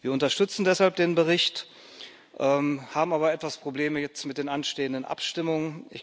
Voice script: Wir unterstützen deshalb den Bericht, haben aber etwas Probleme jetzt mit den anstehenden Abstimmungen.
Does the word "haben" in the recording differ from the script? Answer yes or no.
no